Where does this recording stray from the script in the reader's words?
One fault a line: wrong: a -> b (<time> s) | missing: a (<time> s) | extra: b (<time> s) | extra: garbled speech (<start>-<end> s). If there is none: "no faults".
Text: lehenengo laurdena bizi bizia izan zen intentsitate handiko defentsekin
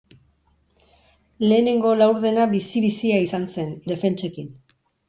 missing: intentsitate handiko (3.7 s)